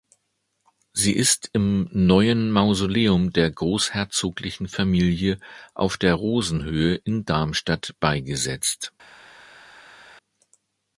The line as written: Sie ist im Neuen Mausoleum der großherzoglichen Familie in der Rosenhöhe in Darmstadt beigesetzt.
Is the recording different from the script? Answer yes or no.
yes